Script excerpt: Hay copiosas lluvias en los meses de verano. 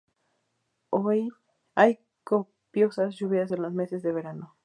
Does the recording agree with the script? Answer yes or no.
yes